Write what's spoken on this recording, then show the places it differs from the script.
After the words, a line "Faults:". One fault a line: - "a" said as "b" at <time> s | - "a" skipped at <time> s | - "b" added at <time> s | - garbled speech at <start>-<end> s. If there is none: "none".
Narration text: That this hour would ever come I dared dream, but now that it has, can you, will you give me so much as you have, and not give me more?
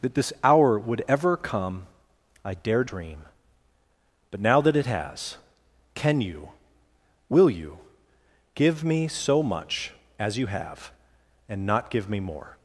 That this hour would ever come I dared dream, but now that it has, can you, will you give me so much as you have, and not give me more?
Faults:
none